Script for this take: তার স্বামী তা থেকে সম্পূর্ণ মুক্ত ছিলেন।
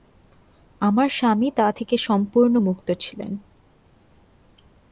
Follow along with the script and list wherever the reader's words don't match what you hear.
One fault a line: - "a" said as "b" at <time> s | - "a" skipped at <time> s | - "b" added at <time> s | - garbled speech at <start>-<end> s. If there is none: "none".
- "তার" said as "আমার" at 0.8 s